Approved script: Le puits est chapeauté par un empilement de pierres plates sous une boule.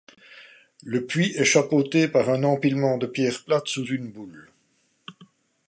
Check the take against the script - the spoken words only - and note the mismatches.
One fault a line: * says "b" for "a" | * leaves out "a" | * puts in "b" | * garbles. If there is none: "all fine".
all fine